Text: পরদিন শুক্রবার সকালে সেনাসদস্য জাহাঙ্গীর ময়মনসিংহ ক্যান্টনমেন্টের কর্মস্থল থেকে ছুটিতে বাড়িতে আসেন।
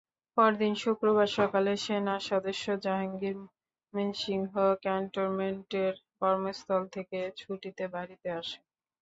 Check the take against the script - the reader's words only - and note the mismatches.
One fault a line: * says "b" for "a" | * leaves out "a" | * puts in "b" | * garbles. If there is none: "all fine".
all fine